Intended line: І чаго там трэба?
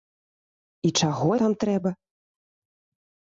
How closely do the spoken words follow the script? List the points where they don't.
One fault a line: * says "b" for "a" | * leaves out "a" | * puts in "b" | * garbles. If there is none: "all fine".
all fine